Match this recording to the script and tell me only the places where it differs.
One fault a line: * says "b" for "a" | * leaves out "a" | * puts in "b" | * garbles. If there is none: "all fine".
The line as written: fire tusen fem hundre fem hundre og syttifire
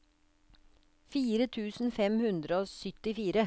* leaves out "fem hundre"